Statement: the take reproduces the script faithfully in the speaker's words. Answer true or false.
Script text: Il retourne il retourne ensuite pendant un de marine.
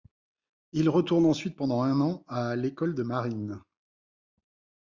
false